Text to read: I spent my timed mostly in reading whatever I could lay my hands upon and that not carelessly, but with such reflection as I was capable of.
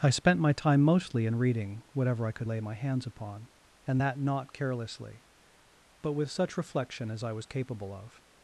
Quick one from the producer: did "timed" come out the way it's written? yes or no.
no